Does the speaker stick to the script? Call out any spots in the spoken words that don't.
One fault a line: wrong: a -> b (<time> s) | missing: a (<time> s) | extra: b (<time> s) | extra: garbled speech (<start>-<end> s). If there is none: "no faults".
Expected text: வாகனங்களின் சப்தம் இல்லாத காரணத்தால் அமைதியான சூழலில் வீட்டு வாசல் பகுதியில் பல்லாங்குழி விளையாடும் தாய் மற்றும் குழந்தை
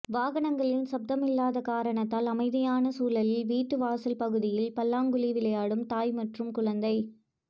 no faults